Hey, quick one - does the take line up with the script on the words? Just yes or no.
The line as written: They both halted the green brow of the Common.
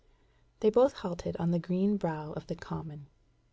no